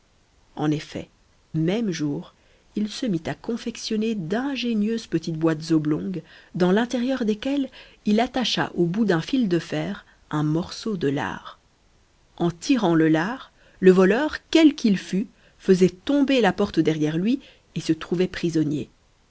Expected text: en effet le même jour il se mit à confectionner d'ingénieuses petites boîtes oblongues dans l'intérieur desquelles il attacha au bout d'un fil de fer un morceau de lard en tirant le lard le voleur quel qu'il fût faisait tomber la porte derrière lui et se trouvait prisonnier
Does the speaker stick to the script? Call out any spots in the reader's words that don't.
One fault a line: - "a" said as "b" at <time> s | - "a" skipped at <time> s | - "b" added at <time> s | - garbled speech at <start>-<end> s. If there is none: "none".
- "le" skipped at 1.1 s